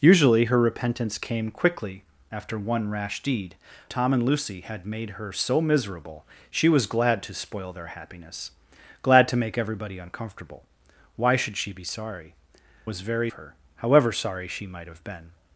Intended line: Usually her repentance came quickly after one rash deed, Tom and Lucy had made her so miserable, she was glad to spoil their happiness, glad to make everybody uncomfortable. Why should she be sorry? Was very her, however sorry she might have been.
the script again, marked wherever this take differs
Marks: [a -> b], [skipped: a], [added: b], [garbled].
Usually her repentance came quickly after one rash deed, Tom and Lucy had made her so miserable, she was glad to spoil their happiness, glad to make everybody uncomfortable. Why should she be sorry? Was very her, however sorry she might have been.